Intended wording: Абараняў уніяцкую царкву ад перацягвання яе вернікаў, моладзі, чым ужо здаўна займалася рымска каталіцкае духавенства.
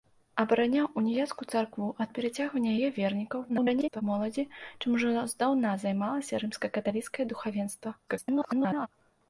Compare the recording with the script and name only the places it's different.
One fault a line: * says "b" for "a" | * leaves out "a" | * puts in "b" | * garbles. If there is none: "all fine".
* garbles
* garbles